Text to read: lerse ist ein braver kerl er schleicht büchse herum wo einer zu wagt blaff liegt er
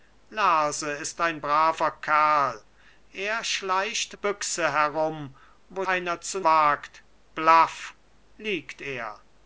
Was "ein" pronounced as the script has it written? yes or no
yes